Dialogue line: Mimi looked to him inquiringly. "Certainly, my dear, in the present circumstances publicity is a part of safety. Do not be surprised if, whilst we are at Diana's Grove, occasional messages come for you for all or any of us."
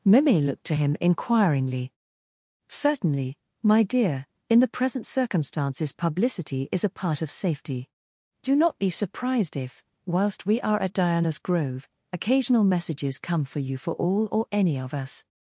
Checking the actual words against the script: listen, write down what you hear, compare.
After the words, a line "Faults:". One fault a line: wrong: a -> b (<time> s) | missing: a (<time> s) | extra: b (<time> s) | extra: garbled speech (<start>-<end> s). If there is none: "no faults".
Mimi looked to him inquiringly. "Certainly, my dear, in the present circumstances publicity is a part of safety. Do not be surprised if, whilst we are at Diana's Grove, occasional messages come for you for all or any of us."
Faults:
no faults